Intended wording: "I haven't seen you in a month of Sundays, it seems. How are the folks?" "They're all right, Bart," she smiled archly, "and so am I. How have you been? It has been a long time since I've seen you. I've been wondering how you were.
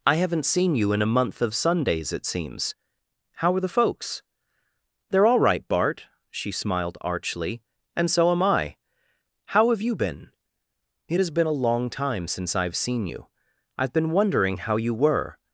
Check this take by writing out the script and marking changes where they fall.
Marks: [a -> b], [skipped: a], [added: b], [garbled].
"I haven't seen you in a month of Sundays, it seems. How are the folks?" "They're all right, Bart," she smiled archly, "and so am I. How have you been? It has been a long time since I've seen you. I've been wondering how you were.